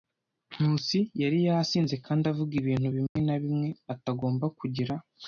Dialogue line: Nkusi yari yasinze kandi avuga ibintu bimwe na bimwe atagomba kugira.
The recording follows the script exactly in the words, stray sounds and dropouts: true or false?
false